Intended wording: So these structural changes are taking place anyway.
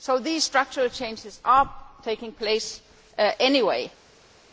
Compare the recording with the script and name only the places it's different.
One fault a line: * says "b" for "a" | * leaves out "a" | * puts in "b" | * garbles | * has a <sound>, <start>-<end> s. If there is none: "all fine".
all fine